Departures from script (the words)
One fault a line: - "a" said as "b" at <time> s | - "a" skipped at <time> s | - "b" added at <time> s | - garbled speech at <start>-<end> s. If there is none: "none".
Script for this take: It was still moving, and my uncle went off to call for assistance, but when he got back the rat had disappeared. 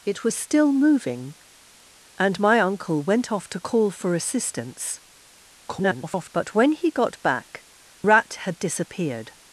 - garbled speech at 5.6-6.3 s
- "the" skipped at 7.6 s